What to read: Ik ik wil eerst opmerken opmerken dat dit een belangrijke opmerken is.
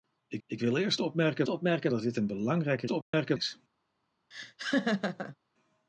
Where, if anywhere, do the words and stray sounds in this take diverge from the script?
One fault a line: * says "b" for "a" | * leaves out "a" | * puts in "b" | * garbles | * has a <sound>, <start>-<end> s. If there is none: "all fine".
* has a dropout, 3.0-3.1 s
* has a laugh, 4.3-5.4 s